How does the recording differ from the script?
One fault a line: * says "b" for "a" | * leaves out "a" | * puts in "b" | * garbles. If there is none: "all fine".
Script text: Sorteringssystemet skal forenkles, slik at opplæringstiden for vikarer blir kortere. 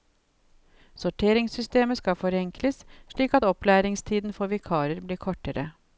all fine